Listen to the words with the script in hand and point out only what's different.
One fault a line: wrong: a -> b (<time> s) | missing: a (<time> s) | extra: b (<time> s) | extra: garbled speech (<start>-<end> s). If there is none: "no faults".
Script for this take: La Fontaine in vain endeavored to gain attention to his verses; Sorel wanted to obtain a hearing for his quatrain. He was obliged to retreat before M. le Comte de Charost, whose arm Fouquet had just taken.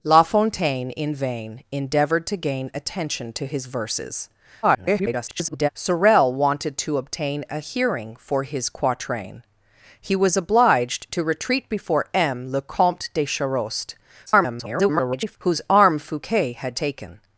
extra: garbled speech (4.6-5.7 s)
extra: garbled speech (14.3-15.4 s)
missing: just (16.8 s)